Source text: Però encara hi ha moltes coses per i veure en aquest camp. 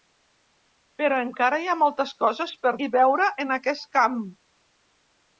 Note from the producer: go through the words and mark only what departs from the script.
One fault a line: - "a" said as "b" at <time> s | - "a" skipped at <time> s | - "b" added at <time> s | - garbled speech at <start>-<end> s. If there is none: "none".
none